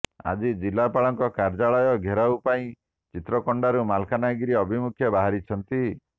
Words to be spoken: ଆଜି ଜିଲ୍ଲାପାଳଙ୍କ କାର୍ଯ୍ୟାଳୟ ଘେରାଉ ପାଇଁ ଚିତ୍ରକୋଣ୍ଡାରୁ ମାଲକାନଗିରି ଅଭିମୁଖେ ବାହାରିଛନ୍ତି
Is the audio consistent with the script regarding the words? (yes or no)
yes